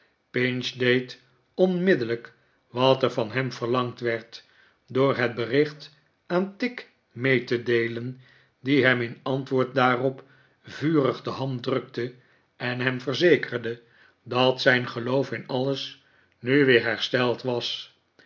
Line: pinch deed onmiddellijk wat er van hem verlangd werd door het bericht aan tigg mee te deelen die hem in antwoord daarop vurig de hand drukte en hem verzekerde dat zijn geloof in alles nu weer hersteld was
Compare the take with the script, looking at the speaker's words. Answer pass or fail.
pass